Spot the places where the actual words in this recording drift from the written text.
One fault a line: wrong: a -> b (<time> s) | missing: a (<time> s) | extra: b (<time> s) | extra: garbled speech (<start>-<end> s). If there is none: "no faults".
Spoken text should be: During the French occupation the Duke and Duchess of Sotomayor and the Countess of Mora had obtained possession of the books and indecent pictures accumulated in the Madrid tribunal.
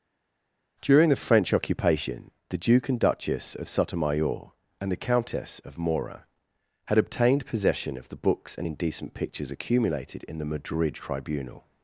no faults